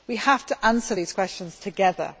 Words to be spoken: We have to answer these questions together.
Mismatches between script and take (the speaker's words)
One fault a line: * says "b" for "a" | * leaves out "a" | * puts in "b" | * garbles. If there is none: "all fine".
all fine